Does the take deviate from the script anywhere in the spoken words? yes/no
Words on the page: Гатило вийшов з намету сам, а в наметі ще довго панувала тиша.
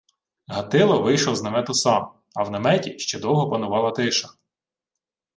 no